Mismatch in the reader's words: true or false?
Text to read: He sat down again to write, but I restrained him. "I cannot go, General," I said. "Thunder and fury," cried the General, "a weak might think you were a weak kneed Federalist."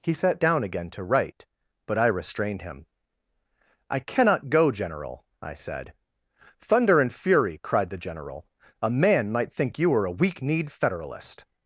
true